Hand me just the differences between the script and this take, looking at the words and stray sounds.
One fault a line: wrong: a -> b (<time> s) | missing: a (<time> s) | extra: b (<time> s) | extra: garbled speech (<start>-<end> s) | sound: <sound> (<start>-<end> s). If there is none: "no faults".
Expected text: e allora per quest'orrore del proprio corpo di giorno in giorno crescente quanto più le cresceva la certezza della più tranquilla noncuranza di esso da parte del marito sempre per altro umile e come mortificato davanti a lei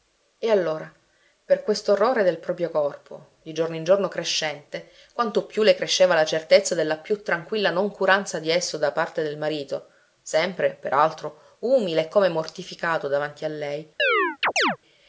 sound: chirp (14.0-14.8 s)